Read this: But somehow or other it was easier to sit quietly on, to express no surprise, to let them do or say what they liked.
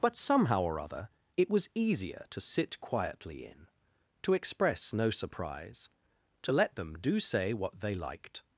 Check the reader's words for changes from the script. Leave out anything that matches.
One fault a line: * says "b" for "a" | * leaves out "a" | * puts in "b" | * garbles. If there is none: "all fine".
* says "in" for "on"
* leaves out "or"